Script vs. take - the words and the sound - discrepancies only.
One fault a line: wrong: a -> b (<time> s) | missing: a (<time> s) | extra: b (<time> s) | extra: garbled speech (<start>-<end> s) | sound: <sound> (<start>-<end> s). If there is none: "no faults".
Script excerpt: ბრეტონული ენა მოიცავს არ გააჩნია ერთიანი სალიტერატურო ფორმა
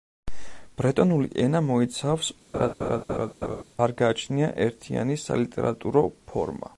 sound: laugh (2.5-3.6 s)